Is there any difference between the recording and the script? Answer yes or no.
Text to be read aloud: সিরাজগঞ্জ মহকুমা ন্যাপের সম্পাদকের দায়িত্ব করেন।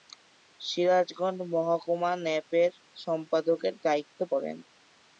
no